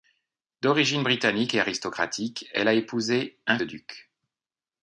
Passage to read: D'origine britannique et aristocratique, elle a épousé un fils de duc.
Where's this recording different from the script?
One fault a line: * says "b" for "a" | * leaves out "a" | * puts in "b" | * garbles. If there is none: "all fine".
* leaves out "fils"